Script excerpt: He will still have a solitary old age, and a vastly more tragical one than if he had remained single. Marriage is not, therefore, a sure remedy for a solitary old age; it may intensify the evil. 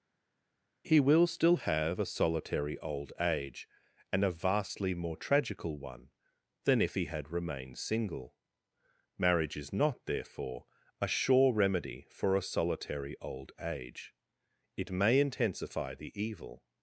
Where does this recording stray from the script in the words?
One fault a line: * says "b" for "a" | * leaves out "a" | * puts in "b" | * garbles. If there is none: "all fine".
all fine